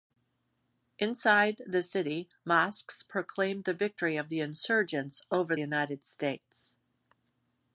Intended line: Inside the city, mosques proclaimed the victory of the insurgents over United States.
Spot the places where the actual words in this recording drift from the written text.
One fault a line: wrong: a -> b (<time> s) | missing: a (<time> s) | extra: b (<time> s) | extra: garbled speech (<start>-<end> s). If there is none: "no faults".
no faults